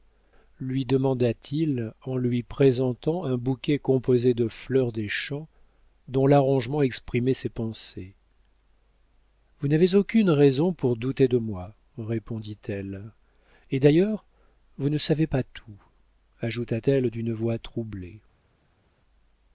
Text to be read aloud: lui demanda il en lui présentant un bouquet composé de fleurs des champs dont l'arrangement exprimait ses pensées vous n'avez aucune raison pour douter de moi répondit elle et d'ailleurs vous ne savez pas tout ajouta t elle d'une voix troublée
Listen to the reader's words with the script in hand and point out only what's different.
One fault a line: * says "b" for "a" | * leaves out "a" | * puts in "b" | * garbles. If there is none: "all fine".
* puts in "t"